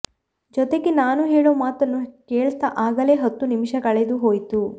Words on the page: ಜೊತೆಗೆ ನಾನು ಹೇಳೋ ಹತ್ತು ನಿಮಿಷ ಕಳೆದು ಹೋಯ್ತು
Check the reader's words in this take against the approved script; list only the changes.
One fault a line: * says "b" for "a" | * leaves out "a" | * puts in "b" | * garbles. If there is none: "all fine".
* puts in "ಮಾತನ್ನು ಕೇಳ್ತಾ ಆಗಲೇ"